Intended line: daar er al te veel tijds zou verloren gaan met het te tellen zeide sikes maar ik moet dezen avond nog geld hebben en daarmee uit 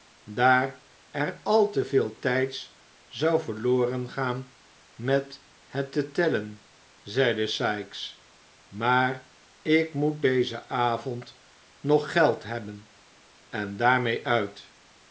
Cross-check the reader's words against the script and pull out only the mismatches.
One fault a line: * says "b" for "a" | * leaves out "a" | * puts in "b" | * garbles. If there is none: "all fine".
all fine